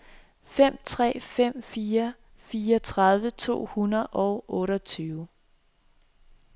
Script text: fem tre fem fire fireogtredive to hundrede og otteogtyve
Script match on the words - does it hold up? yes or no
yes